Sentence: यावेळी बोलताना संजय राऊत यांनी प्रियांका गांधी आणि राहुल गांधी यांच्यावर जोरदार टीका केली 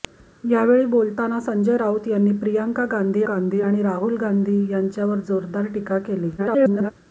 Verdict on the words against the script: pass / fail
fail